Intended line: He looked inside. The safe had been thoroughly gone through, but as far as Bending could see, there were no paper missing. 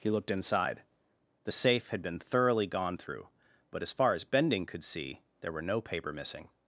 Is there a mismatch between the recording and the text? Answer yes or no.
no